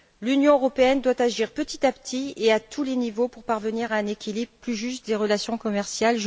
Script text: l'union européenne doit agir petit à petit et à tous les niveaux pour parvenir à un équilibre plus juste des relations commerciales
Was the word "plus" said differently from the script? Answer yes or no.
no